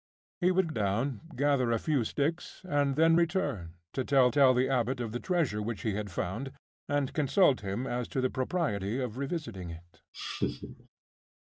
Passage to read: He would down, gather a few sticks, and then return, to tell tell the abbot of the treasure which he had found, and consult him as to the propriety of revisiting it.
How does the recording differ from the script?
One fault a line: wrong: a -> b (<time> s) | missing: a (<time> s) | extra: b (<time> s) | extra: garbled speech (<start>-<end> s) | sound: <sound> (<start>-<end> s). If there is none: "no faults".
sound: laugh (10.1-10.9 s)